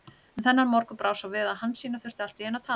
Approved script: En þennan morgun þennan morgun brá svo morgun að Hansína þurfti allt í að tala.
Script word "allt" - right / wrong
right